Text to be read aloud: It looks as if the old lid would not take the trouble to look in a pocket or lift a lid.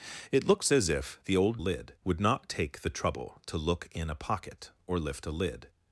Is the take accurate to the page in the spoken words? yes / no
yes